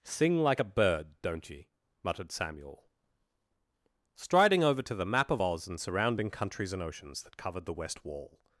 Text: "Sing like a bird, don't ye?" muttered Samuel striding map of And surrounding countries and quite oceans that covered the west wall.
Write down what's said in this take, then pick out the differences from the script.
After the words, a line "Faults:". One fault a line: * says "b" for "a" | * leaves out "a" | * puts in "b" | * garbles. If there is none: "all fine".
"Sing like a bird, don't ye?" muttered Samuel striding over to the map of Oz and surrounding countries and oceans that covered the west wall.
Faults:
* puts in "over to the"
* puts in "Oz"
* leaves out "quite"